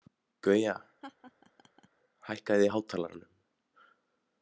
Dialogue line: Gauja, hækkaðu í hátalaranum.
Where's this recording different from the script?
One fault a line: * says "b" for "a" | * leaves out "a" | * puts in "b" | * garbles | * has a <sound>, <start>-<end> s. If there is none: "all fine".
* has a laugh, 1.0-1.9 s